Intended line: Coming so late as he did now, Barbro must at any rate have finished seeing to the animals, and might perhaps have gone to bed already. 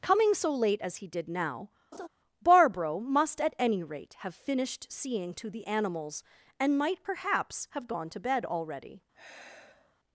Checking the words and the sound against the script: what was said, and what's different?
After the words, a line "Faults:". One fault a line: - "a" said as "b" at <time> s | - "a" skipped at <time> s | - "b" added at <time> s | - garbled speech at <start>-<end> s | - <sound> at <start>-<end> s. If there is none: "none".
Coming so late as he did now, Barbro must at any rate have finished seeing to the animals, and might perhaps have gone to bed already.
Faults:
- laugh at 1.9-2.1 s
- sigh at 9.1-10.0 s